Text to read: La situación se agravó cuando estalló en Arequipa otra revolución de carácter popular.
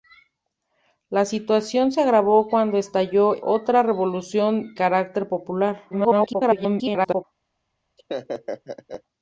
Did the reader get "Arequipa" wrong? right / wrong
wrong